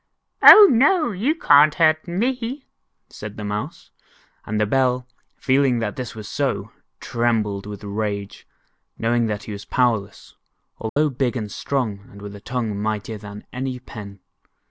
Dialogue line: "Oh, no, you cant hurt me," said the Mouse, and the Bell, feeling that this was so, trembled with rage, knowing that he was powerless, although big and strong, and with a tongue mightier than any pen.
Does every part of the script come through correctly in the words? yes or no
yes